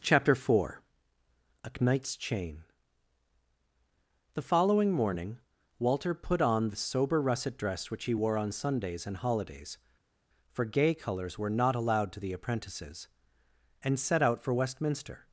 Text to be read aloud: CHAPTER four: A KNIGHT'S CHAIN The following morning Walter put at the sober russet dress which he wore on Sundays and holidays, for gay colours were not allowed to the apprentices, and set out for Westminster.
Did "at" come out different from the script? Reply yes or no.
yes